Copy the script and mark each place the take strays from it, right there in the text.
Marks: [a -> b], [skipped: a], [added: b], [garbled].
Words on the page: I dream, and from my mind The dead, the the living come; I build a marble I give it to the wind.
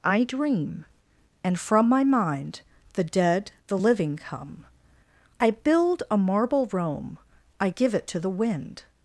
I dream, and from my mind The dead, the [skipped: the] living come; I build a marble [added: Rome] I give it to the wind.